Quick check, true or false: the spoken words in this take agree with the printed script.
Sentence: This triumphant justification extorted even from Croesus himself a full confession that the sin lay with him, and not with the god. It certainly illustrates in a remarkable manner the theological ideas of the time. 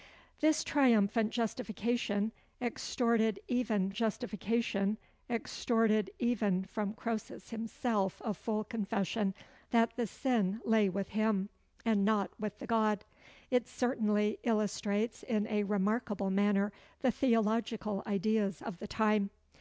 false